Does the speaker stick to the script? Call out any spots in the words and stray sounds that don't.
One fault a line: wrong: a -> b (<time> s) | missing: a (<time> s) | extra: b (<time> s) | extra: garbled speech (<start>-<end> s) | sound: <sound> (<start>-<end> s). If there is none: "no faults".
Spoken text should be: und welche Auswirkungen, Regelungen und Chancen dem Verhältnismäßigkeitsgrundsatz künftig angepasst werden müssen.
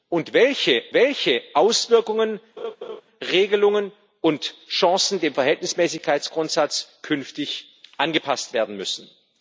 extra: welche (0.9 s)
sound: laugh (2.6-3.0 s)